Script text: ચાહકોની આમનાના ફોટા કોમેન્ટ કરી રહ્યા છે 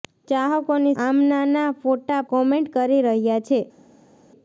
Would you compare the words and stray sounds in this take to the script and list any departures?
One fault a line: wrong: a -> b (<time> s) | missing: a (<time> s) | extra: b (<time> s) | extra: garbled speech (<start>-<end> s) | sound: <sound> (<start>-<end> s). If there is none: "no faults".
no faults